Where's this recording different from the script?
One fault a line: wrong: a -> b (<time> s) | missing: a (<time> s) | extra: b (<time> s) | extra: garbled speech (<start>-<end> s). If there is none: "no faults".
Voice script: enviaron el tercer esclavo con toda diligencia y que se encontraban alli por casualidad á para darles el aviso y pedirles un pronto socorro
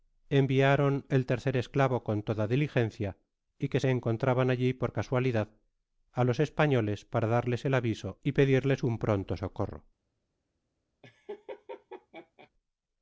extra: los españoles (6.3 s)